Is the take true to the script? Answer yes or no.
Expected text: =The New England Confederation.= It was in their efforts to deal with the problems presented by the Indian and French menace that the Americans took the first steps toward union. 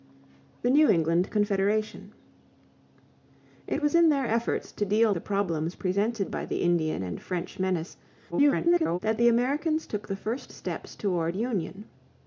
no